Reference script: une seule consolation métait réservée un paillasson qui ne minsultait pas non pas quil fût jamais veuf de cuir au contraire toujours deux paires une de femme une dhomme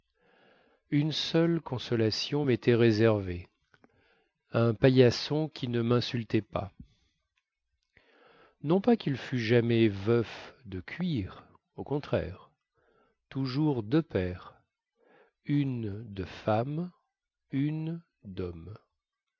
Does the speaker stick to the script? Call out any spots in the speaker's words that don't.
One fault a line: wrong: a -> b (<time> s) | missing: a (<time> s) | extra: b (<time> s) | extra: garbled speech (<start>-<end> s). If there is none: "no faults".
no faults